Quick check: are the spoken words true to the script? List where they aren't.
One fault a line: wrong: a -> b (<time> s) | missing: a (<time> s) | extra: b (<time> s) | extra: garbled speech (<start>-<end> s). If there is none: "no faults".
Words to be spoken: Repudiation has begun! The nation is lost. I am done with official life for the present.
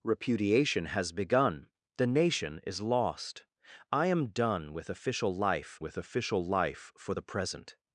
extra: with official life (5.8 s)